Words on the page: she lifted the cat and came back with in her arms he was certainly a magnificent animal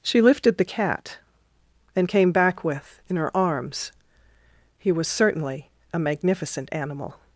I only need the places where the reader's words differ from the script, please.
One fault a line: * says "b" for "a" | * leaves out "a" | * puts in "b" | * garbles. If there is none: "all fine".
all fine